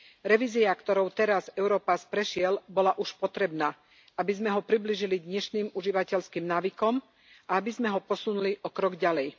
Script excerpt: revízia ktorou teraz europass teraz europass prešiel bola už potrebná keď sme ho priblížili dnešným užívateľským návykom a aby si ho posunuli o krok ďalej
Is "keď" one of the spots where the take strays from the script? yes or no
yes